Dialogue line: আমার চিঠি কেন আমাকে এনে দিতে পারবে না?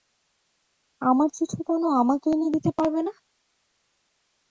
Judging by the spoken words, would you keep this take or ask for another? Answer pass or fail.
pass